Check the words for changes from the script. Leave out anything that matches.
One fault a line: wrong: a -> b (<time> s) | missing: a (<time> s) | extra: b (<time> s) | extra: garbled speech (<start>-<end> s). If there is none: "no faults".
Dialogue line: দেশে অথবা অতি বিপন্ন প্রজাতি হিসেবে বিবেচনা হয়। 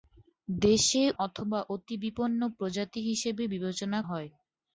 no faults